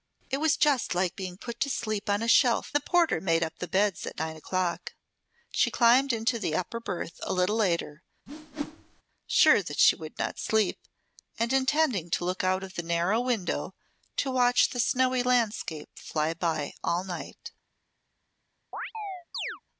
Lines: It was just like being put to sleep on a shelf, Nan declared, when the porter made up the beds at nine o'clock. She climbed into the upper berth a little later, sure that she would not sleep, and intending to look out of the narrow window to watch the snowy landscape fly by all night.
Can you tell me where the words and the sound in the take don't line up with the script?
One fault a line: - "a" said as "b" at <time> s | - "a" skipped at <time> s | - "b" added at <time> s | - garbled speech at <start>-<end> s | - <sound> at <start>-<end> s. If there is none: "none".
- "Nan declared when" skipped at 2.7 s
- whoosh at 8.3-9.0 s
- chirp at 18.7-19.6 s